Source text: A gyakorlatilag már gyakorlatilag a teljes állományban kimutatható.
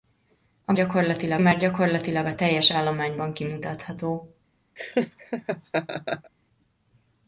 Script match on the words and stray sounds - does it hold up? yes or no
no